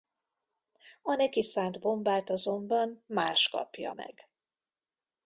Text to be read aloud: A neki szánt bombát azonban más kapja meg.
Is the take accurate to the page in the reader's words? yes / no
yes